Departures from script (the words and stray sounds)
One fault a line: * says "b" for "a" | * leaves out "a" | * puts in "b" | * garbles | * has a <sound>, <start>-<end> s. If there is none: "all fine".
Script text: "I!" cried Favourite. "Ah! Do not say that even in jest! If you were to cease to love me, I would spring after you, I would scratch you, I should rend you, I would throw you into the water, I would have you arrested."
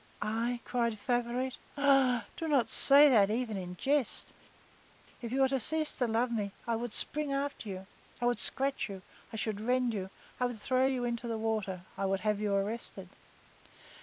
all fine